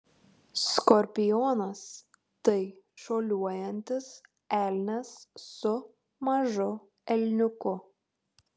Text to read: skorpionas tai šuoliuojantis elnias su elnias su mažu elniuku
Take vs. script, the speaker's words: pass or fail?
fail